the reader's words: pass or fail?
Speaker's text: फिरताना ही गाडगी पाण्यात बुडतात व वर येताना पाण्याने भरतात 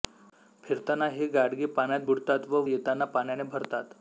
fail